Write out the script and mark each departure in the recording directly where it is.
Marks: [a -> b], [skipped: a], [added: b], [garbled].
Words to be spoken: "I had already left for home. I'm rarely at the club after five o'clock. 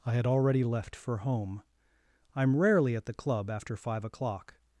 "I had already left for home. I'm rarely at the club after five o'clock.